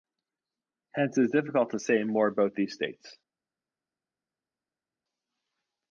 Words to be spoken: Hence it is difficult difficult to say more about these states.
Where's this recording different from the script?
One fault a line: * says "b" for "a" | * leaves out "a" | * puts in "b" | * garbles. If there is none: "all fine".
* leaves out "difficult"